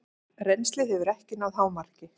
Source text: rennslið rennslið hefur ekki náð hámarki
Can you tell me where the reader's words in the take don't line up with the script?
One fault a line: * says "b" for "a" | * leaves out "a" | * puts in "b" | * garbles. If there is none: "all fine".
* leaves out "rennslið"